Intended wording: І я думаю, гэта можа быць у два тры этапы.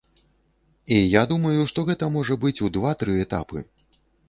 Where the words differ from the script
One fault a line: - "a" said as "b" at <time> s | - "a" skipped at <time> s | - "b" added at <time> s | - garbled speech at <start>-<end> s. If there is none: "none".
- "што" added at 1.7 s